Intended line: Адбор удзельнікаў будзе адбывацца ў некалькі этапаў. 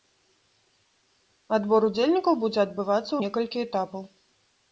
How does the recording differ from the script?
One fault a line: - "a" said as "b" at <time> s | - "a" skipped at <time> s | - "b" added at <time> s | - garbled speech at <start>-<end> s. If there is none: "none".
none